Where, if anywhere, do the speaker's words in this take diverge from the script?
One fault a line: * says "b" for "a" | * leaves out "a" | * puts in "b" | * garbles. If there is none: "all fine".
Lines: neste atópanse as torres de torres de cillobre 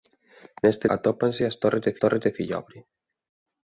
all fine